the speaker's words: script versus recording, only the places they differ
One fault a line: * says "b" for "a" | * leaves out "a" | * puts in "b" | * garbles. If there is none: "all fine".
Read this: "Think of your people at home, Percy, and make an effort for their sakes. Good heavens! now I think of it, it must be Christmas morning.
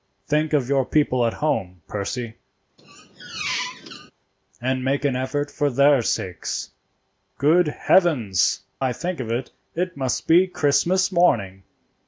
* leaves out "now"